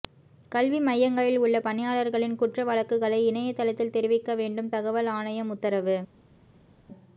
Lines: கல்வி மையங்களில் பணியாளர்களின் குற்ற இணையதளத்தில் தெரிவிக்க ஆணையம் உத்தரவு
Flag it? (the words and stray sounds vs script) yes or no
yes